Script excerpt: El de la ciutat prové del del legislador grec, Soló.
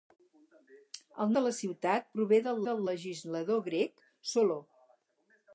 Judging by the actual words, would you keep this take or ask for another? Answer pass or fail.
pass